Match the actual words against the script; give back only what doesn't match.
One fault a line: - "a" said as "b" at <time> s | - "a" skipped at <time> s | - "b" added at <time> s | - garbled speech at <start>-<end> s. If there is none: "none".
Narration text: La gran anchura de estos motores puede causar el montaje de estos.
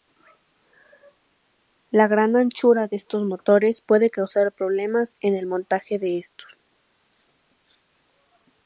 - "problemas en" added at 4.5 s